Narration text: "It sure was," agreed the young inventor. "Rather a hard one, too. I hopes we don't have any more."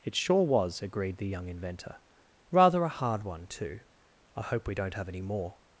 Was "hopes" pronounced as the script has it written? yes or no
no